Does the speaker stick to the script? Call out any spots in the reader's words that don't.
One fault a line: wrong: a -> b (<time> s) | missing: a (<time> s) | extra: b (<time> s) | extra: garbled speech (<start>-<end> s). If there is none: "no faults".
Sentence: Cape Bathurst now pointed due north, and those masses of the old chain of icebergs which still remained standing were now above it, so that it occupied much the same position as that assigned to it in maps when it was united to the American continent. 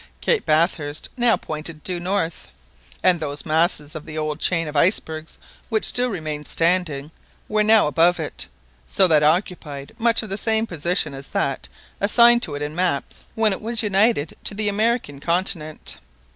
missing: it (9.2 s)